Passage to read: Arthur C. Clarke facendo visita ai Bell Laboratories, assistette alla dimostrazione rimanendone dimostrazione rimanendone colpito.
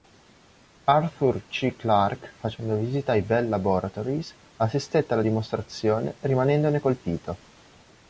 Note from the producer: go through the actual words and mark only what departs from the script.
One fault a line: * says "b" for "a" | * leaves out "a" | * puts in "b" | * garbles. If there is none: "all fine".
* leaves out "dimostrazione rimanendone"